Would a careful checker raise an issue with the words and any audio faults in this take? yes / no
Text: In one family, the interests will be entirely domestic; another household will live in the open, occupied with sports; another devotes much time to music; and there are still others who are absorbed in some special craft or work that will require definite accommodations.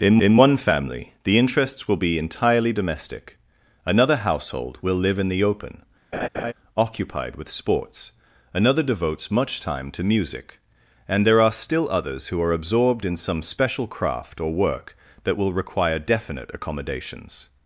yes